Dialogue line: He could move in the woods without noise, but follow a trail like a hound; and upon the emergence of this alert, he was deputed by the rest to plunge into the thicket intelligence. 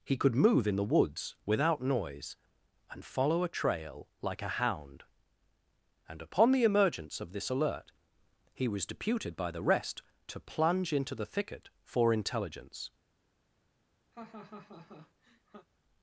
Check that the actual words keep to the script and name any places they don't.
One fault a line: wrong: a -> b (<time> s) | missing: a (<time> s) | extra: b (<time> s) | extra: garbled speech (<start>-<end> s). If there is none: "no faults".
wrong: but -> and (2.9 s)
extra: for (11.8 s)